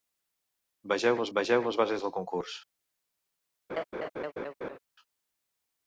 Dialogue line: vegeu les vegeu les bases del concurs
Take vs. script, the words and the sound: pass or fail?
fail